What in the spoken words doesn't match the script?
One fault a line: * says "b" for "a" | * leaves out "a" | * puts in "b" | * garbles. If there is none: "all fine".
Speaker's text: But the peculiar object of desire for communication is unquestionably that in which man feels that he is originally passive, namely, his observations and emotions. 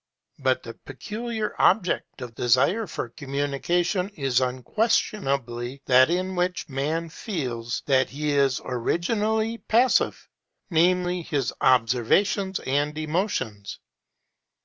all fine